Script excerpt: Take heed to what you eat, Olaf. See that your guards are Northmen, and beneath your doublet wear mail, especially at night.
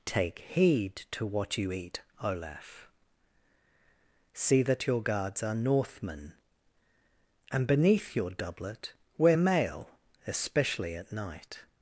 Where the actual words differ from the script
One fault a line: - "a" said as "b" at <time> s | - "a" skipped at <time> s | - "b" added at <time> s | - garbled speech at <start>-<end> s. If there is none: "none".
none